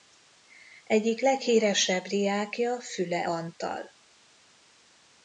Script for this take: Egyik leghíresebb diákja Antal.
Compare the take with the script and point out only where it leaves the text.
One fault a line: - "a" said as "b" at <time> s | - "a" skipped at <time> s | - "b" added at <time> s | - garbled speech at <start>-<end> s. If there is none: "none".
- "Füle" added at 2.8 s